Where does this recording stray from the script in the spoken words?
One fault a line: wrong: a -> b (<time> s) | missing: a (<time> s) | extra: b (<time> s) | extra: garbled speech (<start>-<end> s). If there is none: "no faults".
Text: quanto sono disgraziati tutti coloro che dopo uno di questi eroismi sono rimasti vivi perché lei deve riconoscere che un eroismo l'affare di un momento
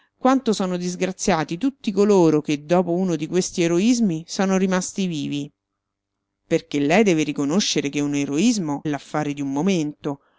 no faults